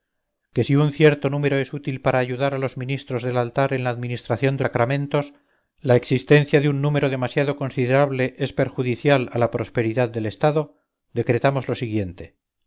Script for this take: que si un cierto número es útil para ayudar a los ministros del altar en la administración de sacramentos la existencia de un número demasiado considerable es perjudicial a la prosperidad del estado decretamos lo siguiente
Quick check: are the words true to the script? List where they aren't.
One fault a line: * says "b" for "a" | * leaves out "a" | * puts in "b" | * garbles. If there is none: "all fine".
all fine